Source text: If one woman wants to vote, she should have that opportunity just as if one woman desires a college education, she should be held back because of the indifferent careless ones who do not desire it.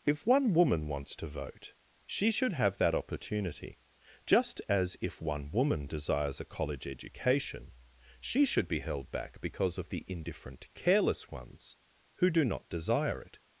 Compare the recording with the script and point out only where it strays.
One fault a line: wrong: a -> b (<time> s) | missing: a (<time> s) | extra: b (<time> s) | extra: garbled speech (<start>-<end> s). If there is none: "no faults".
no faults